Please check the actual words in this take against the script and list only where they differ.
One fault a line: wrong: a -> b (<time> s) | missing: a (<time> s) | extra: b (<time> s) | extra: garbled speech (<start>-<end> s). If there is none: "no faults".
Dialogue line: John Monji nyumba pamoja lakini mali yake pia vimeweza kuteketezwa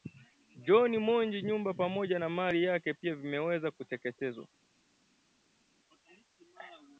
wrong: lakini -> na (2.2 s)